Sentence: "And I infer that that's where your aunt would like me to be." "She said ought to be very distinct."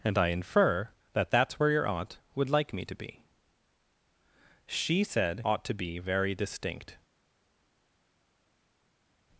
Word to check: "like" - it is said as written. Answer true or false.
true